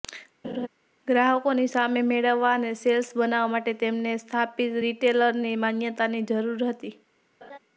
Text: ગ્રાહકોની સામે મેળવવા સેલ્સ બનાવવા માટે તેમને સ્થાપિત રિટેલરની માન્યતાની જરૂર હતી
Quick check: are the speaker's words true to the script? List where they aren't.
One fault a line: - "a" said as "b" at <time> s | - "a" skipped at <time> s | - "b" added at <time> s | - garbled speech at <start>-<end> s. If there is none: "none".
- "અને" added at 2.6 s